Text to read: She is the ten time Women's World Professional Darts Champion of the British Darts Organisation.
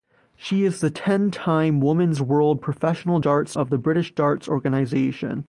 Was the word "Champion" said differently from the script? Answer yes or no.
yes